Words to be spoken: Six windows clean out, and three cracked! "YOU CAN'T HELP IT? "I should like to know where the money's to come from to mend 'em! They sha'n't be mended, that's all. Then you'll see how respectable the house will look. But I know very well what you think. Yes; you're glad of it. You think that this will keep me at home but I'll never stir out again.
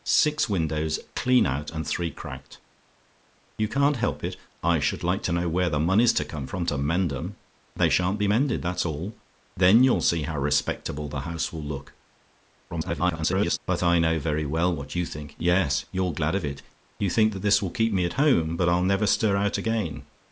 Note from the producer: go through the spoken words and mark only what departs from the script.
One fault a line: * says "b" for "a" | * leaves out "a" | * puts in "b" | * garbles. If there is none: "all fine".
* garbles